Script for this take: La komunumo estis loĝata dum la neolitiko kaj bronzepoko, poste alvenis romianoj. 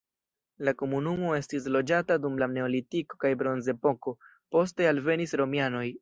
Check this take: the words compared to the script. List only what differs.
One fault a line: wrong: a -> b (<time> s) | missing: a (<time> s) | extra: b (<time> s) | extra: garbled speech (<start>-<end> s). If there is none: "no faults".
no faults